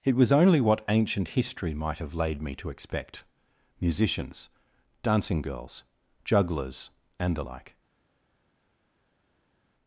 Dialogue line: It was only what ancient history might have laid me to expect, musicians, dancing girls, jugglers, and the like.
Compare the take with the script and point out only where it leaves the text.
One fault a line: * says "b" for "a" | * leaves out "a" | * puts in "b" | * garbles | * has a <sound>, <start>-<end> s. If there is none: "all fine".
all fine